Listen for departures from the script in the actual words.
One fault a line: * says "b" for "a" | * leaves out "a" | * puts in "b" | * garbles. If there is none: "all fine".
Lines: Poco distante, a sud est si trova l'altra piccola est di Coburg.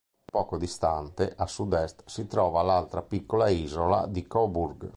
* says "isola" for "est"